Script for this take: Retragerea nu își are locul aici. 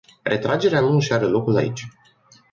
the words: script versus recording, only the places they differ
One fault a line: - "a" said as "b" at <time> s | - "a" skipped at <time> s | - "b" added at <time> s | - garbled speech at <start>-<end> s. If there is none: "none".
none